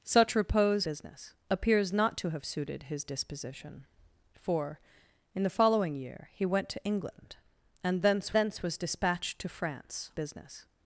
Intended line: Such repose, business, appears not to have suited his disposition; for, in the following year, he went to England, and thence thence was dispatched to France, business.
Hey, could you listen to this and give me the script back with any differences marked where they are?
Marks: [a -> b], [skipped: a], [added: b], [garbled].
Such repose, business, appears not to have suited his disposition; for, in the following year, he went to England, and thence thence was dispatched to France, business.